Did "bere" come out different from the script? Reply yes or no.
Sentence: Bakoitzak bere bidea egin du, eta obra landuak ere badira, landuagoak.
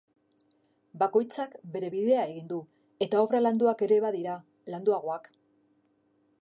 no